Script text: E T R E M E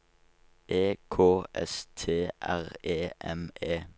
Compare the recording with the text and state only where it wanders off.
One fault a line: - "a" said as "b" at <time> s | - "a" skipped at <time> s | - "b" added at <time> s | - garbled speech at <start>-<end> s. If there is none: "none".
- "K S" added at 1.1 s